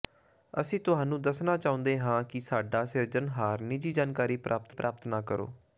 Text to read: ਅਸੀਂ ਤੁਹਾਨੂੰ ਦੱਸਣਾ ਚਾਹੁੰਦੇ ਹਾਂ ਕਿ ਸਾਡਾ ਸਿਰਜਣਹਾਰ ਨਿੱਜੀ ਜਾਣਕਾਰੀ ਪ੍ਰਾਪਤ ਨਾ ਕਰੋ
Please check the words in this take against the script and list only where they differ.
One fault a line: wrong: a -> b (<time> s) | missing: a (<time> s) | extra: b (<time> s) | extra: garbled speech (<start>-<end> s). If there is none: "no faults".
extra: ਪ੍ਰਾਪਤ (4.7 s)